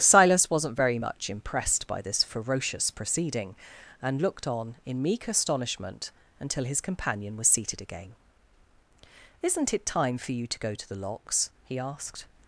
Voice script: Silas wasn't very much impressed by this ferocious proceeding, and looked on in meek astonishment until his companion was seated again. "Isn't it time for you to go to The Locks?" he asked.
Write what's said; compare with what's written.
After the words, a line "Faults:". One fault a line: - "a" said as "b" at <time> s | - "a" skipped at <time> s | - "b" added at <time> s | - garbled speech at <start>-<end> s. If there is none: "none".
Silas wasn't very much impressed by this ferocious proceeding, and looked on in meek astonishment until his companion was seated again. "Isn't it time for you to go to The Locks?" he asked.
Faults:
none